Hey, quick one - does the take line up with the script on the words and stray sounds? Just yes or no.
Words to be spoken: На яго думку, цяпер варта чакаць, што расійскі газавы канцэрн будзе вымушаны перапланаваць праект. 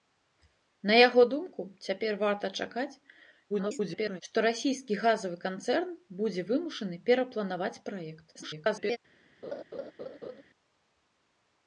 no